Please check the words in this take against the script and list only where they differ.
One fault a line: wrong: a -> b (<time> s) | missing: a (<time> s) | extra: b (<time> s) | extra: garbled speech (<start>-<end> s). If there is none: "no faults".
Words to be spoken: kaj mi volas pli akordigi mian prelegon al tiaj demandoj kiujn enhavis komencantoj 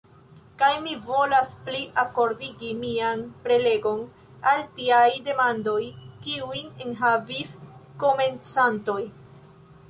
no faults